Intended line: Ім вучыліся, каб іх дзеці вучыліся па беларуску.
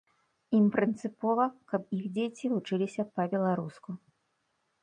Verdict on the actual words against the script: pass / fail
fail